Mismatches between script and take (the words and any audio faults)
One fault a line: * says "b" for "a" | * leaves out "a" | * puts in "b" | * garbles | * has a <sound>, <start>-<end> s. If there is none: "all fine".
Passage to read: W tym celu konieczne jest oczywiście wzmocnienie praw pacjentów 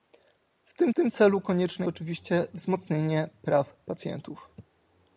* puts in "tym"
* leaves out "jest"